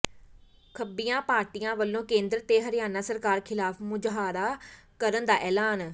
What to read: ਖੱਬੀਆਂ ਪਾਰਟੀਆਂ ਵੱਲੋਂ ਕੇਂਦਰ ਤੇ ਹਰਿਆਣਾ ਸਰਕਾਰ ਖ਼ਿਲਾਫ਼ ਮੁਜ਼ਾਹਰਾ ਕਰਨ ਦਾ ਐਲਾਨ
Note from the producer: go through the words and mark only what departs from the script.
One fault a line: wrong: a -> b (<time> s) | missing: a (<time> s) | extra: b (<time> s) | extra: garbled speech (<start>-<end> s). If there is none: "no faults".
no faults